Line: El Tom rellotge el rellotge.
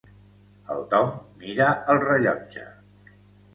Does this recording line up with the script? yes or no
no